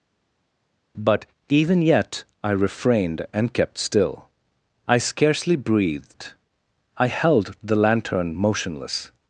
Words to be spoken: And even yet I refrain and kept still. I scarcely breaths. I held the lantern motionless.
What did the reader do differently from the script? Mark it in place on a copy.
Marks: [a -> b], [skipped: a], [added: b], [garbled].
[And -> But] even yet I [refrain -> refrained] and kept still. I scarcely [breaths. -> breathed] I held the lantern motionless.